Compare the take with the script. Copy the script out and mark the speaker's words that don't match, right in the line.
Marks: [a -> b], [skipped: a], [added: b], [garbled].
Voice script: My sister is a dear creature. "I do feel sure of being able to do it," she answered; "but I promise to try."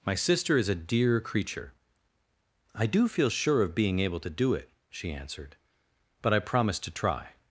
My sister is a dear creature. "I do feel sure of being able to do it," she answered; "but I promise to try."